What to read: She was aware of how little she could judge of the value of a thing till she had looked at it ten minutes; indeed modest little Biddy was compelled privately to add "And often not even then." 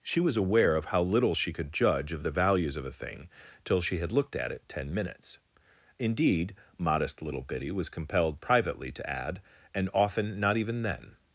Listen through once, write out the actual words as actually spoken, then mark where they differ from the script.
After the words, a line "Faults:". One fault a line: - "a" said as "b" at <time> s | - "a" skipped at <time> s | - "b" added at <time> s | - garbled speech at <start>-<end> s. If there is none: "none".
She was aware of how little she could judge of the values of a thing till she had looked at it ten minutes; indeed modest little Biddy was compelled privately to add "And often not even then."
Faults:
- "value" said as "values" at 2.3 s